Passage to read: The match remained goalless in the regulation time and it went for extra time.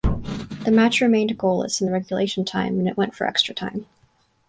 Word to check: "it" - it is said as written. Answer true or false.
true